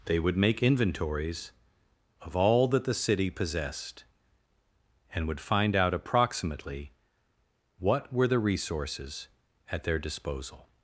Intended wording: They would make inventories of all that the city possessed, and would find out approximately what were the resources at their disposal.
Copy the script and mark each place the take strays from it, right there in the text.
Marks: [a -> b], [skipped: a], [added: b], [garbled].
They would make inventories of all that the city possessed, and would find out approximately what were the resources at their disposal.